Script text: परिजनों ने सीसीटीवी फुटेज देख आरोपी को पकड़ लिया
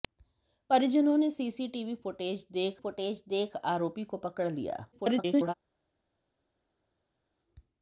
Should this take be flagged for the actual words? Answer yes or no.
yes